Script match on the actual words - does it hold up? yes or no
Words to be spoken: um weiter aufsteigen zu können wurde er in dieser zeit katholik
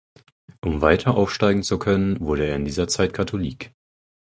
yes